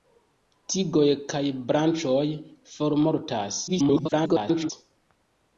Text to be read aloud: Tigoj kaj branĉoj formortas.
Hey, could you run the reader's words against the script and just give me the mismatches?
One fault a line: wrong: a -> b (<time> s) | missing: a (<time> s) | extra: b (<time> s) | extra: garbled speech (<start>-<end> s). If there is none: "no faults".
extra: garbled speech (3.7-4.7 s)